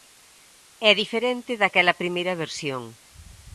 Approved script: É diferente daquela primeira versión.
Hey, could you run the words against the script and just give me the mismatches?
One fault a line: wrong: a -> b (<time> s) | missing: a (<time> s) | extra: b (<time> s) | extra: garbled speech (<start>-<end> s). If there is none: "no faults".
no faults